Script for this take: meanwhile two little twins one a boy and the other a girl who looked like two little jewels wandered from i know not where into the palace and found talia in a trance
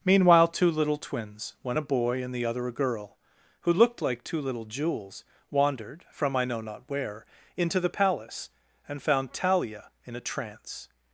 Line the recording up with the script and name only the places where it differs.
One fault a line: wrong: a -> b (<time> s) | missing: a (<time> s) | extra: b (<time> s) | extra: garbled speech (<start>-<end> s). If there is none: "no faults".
no faults